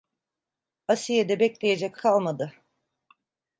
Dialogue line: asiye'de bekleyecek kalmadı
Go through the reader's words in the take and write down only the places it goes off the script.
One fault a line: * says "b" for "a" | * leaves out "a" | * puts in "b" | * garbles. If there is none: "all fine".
all fine